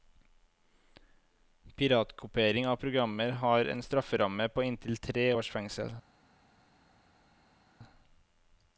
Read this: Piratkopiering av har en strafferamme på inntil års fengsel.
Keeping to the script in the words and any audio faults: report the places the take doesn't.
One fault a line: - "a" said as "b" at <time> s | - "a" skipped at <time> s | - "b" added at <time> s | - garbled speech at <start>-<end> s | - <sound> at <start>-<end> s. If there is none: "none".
- "programmer" added at 2.8 s
- "tre" added at 5.0 s